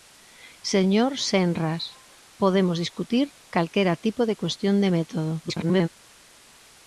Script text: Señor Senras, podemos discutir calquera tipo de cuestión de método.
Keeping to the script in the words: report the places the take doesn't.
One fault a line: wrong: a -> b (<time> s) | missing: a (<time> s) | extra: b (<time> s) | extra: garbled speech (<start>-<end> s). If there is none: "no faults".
extra: garbled speech (5.4-5.9 s)